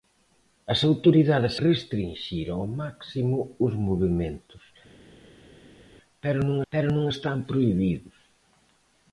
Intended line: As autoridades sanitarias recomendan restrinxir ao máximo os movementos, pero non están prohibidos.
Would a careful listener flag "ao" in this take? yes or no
no